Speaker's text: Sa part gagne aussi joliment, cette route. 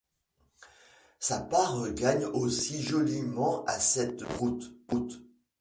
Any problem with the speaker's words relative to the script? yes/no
yes